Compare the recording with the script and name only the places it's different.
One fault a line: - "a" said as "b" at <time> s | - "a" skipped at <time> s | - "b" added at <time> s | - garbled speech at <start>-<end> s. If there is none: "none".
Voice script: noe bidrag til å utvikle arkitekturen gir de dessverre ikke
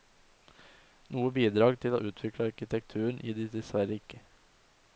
none